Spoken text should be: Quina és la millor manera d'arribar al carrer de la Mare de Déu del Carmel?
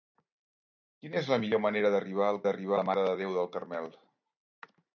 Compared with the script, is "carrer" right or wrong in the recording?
wrong